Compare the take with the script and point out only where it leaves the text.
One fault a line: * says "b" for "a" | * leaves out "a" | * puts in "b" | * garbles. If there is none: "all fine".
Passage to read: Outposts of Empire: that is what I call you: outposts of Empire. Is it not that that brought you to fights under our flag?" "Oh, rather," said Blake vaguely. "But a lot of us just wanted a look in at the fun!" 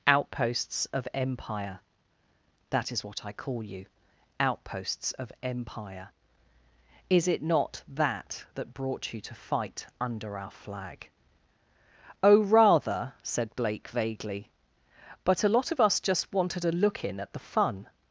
* says "fight" for "fights"